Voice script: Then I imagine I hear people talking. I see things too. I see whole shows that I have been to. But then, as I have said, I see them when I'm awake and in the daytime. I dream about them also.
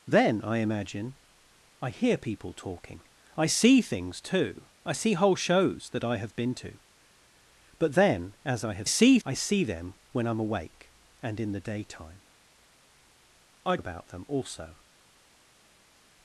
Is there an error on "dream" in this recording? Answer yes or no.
yes